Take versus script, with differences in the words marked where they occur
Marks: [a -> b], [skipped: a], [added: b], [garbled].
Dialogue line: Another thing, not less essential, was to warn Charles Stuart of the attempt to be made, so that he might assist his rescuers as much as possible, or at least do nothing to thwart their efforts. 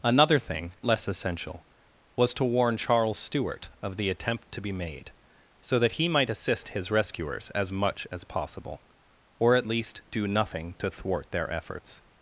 Another thing, [skipped: not] less essential, was to warn Charles Stuart of the attempt to be made, so that he might assist his rescuers as much as possible, or at least do nothing to thwart their efforts.